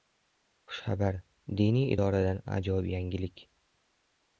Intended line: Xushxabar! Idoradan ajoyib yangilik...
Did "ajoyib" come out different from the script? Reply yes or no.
no